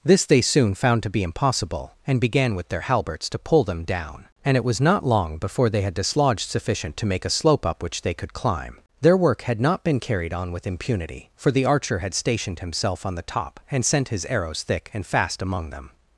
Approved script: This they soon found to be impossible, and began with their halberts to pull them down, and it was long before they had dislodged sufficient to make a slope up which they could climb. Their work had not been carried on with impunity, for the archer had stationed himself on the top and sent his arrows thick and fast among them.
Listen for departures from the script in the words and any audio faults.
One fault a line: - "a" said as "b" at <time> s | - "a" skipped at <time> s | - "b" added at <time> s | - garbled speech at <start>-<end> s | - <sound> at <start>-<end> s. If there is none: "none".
- "not" added at 4.8 s